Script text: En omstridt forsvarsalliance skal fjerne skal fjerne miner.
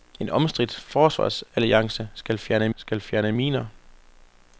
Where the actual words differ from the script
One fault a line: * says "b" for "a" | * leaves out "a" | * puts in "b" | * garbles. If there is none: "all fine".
all fine